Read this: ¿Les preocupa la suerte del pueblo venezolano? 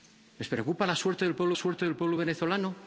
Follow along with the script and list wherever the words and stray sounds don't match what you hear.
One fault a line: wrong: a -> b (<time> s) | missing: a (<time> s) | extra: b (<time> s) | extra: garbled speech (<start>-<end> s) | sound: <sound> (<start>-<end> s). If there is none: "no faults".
extra: suerte del pueblo (1.5 s)